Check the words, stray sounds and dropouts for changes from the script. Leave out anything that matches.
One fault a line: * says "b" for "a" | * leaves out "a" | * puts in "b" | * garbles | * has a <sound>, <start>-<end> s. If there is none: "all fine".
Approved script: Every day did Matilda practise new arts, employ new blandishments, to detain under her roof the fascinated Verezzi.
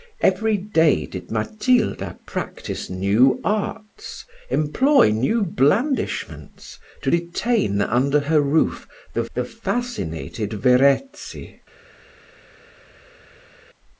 * puts in "the"